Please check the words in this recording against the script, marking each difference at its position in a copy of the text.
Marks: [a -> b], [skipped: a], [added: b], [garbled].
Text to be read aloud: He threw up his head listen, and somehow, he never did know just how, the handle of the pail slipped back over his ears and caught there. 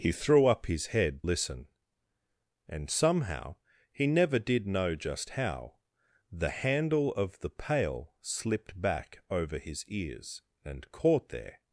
He threw up his head listen, and somehow, he never did know just how, the handle of the pail slipped back over his ears and caught there.